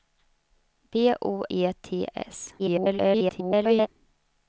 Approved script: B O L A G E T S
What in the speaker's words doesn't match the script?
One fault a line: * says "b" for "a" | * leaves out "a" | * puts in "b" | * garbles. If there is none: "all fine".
* leaves out "L A G"
* garbles